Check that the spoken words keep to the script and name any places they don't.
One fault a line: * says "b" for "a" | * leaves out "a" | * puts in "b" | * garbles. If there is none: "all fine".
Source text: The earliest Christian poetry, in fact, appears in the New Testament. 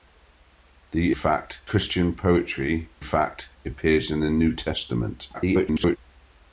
* says "fact" for "earliest"
* leaves out "in"
* garbles